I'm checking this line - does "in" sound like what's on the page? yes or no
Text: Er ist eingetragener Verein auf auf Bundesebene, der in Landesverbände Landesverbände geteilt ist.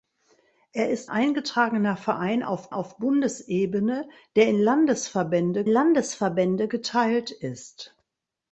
yes